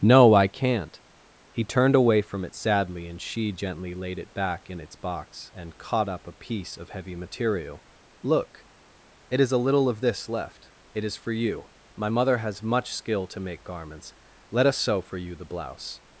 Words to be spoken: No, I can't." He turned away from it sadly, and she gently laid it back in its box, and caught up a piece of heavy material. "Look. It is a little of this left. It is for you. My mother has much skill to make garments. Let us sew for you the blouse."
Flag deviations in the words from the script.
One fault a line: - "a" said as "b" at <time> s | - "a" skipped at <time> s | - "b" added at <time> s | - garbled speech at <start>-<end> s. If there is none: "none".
none